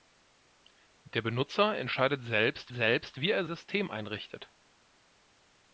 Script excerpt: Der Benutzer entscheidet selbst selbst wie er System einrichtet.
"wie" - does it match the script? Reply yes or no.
yes